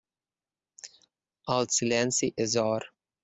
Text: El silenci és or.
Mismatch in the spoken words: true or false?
false